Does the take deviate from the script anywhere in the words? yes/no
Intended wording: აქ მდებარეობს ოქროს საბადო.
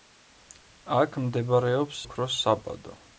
no